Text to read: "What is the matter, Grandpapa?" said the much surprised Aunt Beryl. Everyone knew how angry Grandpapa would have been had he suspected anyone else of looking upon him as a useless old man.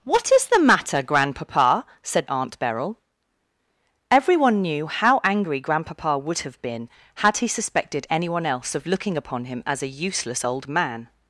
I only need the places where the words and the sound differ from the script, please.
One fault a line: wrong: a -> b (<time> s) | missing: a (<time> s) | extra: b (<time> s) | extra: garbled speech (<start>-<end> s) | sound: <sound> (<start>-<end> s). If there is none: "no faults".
missing: the much surprised (2.3 s)